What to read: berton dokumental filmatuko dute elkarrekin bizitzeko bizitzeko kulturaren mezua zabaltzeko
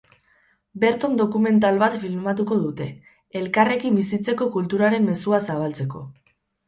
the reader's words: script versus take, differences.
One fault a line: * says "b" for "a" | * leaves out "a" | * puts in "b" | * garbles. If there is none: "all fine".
* puts in "bat"
* leaves out "bizitzeko"